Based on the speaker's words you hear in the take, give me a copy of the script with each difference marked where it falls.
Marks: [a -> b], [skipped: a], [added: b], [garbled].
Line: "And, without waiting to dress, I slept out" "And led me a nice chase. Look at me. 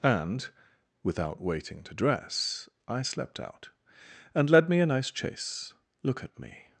"And, without waiting to dress, I slept out" "And led me a nice chase. Look at me.